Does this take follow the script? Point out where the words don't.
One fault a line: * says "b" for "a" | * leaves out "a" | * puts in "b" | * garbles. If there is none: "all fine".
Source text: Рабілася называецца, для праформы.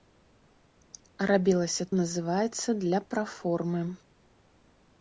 all fine